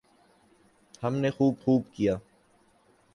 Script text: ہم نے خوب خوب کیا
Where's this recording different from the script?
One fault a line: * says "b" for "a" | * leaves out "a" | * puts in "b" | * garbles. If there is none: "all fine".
all fine